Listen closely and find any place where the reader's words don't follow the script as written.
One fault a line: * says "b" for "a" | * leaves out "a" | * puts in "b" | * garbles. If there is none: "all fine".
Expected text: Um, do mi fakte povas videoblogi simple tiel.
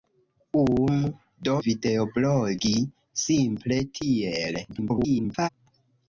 * leaves out "mi fakte povas"
* garbles